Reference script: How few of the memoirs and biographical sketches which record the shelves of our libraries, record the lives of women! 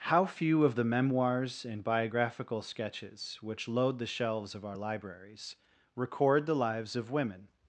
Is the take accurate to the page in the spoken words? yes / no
no